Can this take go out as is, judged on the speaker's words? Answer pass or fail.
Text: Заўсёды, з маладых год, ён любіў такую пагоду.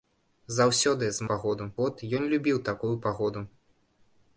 fail